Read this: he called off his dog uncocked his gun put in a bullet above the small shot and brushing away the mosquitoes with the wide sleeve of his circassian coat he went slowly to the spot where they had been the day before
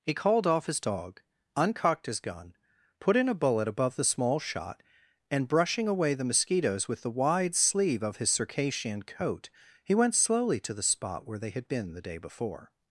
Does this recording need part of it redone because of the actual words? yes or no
no